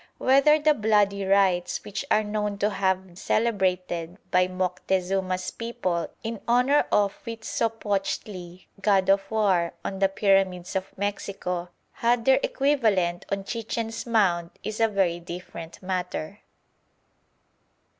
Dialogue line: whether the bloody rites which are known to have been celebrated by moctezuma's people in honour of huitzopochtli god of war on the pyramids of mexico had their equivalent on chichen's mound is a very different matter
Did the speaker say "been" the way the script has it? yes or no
no